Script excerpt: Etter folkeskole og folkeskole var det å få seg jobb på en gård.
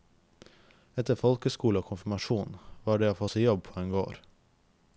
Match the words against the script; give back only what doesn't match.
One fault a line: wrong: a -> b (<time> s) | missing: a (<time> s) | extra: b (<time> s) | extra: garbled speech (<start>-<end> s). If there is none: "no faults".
wrong: folkeskole -> konfirmasjon (1.9 s)